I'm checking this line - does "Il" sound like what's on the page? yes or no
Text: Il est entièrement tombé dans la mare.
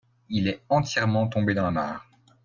yes